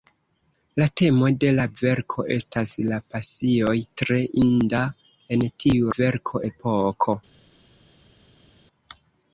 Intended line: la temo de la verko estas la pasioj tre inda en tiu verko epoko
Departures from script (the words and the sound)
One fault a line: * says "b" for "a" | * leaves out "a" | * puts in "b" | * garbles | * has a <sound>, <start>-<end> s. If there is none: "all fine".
all fine